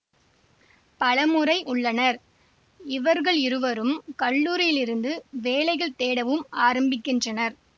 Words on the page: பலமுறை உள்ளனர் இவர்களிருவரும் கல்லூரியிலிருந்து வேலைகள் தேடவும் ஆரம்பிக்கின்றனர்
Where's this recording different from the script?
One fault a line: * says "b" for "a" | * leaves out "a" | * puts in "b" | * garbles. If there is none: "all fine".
all fine